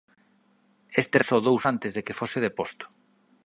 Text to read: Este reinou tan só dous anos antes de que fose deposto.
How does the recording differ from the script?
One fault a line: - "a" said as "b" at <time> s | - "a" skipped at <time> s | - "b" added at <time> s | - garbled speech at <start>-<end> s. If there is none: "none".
- "reinou tan" skipped at 1.2 s
- "anos" skipped at 1.6 s